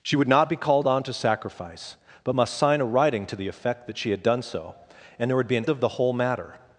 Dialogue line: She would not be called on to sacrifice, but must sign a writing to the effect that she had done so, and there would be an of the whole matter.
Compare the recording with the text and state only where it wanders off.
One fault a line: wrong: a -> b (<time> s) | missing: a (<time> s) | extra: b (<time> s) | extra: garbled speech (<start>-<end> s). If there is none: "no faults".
no faults